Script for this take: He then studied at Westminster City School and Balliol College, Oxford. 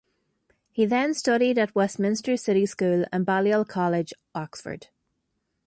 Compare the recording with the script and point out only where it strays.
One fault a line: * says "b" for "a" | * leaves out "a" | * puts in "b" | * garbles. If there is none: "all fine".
all fine